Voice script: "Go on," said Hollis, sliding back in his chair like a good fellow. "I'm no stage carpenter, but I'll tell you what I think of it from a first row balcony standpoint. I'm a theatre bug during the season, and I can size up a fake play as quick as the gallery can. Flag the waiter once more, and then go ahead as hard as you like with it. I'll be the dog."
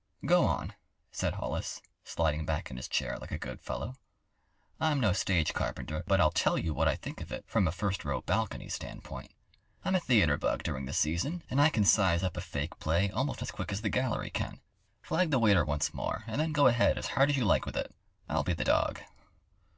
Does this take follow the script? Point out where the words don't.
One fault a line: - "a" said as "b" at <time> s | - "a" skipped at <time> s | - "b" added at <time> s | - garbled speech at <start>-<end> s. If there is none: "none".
- "almost" added at 13.1 s